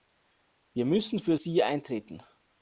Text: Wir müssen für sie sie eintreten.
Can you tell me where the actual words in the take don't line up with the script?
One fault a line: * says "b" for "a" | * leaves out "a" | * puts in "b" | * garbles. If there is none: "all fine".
* leaves out "sie"